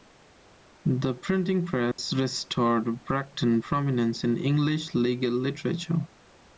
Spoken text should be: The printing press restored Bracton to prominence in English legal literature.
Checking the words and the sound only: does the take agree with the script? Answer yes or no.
no